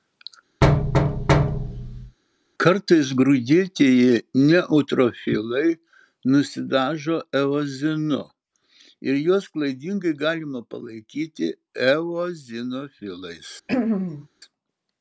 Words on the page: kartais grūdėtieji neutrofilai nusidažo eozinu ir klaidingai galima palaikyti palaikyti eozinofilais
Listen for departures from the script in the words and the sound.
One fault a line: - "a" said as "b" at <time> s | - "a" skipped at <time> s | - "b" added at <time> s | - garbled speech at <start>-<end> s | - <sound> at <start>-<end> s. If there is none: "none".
- thud at 0.6-2.2 s
- "juos" added at 9.2 s
- "palaikyti" skipped at 11.5 s
- throat clearing at 13.7-14.3 s